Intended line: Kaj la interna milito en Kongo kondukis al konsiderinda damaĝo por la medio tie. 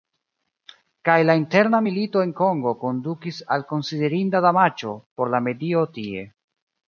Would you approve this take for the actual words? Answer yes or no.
yes